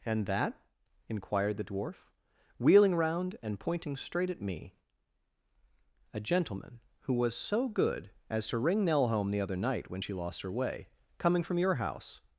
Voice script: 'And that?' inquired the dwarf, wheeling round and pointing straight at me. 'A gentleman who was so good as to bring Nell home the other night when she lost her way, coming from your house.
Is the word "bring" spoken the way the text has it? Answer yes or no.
no